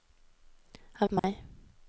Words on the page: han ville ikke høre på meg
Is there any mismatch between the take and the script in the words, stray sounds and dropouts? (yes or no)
yes